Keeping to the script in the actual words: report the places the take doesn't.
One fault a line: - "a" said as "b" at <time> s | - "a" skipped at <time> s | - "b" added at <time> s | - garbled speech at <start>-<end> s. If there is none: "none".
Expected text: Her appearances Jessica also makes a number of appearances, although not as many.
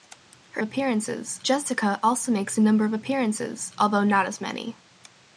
none